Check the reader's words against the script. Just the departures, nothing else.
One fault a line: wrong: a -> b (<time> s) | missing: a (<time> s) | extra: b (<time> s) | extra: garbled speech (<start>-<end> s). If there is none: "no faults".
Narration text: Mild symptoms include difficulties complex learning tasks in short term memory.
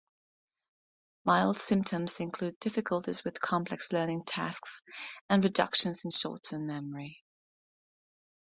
extra: with (3.2 s)
extra: and reductions (5.3 s)